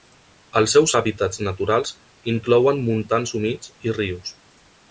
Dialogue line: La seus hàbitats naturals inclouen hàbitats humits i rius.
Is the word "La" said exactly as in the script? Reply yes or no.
no